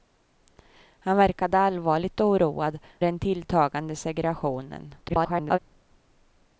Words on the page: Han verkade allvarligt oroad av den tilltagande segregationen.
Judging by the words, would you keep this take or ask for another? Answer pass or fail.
fail